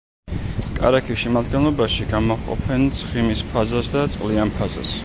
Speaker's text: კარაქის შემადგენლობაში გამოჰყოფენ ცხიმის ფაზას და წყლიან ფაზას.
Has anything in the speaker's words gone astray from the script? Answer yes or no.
no